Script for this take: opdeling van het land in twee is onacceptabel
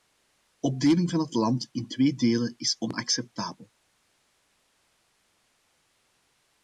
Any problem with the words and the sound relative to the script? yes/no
yes